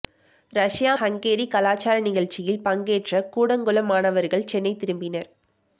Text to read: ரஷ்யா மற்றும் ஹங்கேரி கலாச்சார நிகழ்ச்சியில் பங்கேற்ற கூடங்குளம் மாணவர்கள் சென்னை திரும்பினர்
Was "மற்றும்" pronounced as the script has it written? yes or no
no